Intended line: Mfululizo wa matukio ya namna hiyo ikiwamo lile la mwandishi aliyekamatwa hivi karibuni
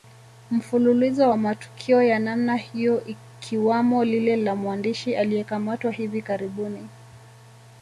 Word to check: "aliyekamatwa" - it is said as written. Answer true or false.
true